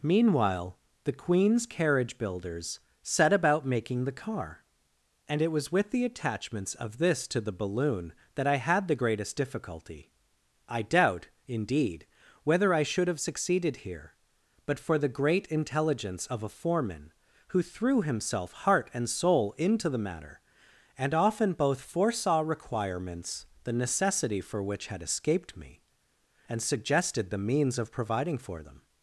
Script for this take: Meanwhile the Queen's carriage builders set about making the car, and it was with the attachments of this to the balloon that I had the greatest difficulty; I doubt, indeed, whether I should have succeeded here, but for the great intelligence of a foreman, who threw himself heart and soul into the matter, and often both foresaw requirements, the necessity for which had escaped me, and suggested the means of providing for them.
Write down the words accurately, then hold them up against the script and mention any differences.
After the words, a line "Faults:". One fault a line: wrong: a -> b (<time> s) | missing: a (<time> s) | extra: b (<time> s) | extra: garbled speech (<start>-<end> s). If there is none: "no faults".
Meanwhile the Queen's carriage builders set about making the car, and it was with the attachments of this to the balloon that I had the greatest difficulty; I doubt, indeed, whether I should have succeeded here, but for the great intelligence of a foreman, who threw himself heart and soul into the matter, and often both foresaw requirements, the necessity for which had escaped me, and suggested the means of providing for them.
Faults:
no faults